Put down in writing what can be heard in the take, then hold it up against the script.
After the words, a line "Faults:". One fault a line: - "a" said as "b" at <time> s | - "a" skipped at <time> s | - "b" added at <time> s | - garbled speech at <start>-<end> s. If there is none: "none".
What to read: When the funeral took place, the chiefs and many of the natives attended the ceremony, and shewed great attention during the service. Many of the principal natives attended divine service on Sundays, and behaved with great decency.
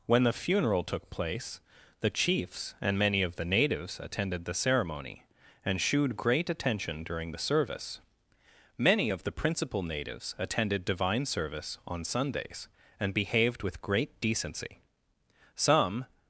When the funeral took place, the chiefs and many of the natives attended the ceremony, and shewed great attention during the service. Many of the principal natives attended divine service on Sundays, and behaved with great decency. Some
Faults:
- "Some" added at 15.5 s